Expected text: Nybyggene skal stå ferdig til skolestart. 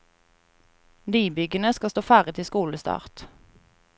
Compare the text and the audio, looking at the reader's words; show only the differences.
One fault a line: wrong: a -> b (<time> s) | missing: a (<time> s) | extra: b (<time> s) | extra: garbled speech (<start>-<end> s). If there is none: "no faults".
no faults